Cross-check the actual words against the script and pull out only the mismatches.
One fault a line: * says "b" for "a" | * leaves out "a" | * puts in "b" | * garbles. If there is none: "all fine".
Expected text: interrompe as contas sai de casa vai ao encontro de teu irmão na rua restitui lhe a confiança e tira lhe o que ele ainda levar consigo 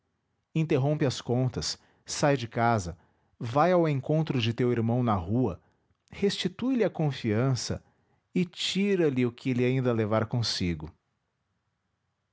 all fine